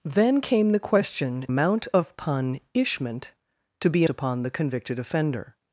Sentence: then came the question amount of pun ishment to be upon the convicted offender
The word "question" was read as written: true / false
true